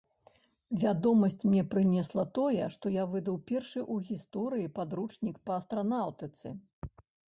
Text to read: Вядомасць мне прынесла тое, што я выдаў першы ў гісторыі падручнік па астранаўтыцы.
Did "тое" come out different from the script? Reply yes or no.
no